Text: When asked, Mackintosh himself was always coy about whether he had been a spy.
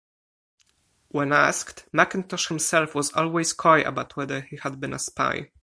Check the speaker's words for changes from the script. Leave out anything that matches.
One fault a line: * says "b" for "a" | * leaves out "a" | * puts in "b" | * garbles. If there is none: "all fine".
all fine